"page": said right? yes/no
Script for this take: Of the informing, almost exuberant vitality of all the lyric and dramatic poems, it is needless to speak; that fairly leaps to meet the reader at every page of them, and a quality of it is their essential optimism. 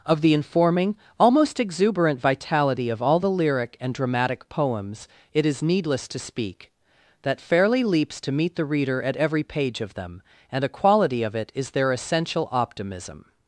yes